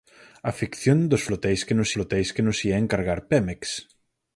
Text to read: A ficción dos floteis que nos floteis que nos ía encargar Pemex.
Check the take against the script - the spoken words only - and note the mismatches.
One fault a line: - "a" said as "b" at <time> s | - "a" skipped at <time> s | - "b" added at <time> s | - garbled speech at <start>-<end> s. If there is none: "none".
none